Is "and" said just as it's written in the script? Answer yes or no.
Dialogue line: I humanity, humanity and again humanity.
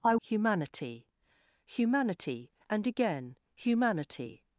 yes